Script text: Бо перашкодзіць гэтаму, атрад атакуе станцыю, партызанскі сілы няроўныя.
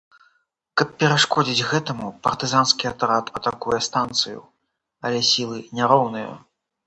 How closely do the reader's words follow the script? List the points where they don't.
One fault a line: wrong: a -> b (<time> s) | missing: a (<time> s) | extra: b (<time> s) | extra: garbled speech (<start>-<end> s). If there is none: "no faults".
wrong: Бо -> Каб (0.8 s)
extra: партызанскі (2.3 s)
wrong: партызанскі -> але (5.1 s)